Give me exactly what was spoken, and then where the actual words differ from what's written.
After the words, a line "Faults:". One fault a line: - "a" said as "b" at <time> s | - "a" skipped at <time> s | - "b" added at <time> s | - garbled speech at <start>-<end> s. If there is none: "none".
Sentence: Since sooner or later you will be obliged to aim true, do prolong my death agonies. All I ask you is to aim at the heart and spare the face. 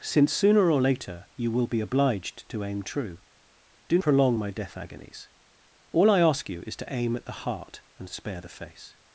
Since sooner or later you will be obliged to aim true, do prolong my death agonies. All I ask you is to aim at the heart and spare the face.
Faults:
none